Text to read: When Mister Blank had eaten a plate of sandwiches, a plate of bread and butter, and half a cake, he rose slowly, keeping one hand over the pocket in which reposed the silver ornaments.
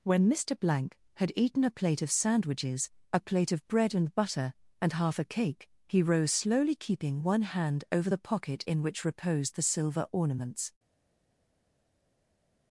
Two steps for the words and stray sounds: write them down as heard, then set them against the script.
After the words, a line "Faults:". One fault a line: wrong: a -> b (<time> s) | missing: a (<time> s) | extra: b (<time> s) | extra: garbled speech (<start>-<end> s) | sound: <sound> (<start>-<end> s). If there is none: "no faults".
When Mister Blank had eaten a plate of sandwiches, a plate of bread and butter, and half a cake, he rose slowly, keeping one hand over the pocket in which reposed the silver ornaments.
Faults:
no faults